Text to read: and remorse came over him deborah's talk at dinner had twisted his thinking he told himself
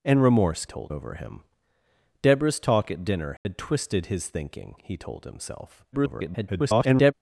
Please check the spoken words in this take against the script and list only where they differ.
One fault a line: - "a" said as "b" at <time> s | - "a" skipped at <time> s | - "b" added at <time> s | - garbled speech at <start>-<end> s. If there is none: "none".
- "came" said as "told" at 0.7 s
- garbled speech at 5.9-7.1 s